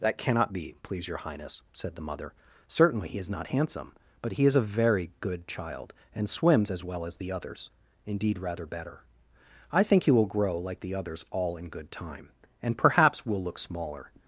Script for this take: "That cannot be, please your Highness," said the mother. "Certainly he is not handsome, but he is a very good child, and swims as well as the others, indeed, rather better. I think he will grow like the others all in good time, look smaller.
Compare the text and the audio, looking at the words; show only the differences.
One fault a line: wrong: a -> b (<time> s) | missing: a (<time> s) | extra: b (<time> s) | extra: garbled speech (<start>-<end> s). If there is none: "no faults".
extra: and perhaps will (12.6 s)